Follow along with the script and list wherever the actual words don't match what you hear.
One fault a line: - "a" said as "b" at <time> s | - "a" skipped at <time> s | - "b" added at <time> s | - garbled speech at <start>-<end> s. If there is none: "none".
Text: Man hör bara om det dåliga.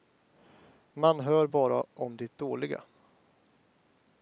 none